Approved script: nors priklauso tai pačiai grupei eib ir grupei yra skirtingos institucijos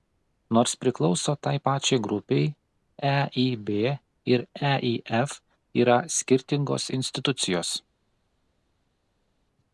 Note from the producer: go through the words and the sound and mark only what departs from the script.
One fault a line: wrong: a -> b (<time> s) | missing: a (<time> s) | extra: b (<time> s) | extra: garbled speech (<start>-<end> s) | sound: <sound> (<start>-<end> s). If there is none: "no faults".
wrong: grupei -> eif (4.7 s)